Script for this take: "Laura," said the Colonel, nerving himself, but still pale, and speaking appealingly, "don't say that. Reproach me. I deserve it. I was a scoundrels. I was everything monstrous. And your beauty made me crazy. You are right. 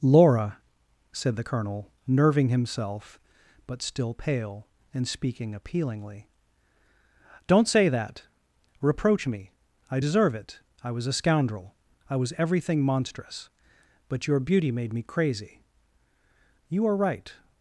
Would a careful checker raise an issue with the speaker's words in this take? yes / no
yes